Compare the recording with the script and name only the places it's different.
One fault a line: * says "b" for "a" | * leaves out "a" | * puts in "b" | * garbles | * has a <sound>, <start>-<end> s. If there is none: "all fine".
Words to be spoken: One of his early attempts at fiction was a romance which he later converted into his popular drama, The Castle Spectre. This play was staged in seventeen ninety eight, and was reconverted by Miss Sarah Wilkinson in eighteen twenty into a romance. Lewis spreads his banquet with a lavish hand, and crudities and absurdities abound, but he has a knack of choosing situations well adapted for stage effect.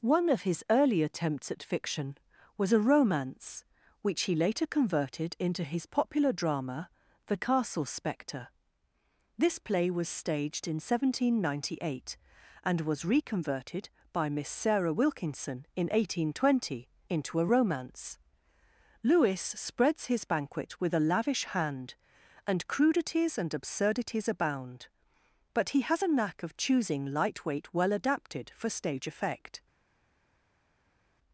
* says "lightweight" for "situations"